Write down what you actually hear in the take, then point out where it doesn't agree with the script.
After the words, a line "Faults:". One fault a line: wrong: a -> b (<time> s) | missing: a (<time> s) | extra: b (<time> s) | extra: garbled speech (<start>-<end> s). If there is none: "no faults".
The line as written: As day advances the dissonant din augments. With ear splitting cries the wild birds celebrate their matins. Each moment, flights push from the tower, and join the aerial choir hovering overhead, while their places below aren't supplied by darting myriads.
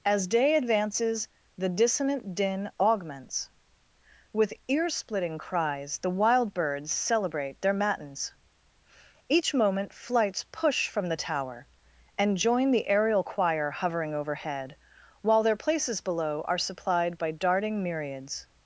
As day advances the dissonant din augments. With ear splitting cries the wild birds celebrate their matins. Each moment, flights push from the tower, and join the aerial choir hovering overhead, while their places below are supplied by darting myriads.
Faults:
wrong: aren't -> are (16.5 s)